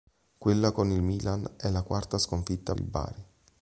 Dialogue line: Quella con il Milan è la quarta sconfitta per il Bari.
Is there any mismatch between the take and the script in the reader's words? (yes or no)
yes